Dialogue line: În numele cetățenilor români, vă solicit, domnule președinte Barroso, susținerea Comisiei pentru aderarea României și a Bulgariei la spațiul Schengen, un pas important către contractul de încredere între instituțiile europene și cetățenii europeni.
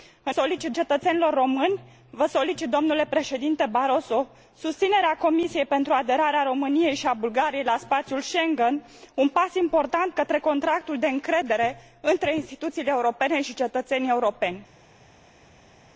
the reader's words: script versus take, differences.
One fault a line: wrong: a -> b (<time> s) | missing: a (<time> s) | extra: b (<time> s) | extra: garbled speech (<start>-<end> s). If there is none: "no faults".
wrong: numele -> solicit (0.3 s)